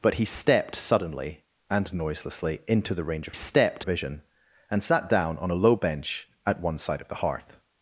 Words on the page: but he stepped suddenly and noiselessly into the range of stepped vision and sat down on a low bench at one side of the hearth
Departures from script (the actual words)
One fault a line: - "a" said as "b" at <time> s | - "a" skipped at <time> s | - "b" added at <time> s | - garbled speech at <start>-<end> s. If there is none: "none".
none